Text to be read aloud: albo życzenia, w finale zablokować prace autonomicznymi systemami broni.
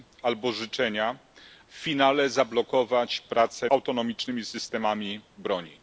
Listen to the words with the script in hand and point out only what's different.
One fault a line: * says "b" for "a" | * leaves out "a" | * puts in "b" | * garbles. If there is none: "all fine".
all fine